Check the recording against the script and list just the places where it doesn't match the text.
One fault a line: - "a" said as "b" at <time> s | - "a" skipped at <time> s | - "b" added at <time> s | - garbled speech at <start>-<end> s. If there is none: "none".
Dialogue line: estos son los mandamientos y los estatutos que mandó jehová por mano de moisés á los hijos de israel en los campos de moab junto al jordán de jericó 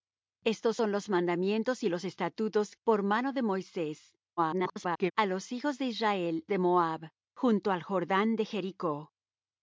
- "que mandó jehová" skipped at 2.8 s
- garbled speech at 4.4-5.1 s
- "en los campos" skipped at 6.5 s